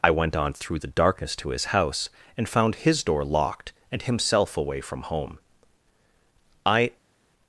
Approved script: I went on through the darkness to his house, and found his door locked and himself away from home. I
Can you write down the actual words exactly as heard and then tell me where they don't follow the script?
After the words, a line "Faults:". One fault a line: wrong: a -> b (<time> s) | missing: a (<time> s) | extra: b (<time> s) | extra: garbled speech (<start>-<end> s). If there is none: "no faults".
I went on through the darkness to his house, and found his door locked and himself away from home. I
Faults:
no faults